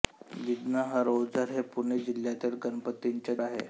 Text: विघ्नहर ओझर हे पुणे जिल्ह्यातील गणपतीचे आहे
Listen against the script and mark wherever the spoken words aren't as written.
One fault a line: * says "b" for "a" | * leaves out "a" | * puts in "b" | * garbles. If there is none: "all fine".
all fine